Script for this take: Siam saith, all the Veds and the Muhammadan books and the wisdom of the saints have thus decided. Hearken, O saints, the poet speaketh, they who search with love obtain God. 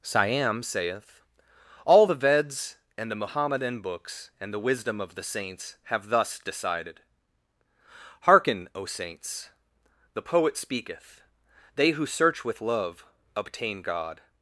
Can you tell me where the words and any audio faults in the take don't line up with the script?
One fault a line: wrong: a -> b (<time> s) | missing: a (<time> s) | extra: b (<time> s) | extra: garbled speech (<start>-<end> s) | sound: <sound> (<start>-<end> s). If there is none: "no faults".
no faults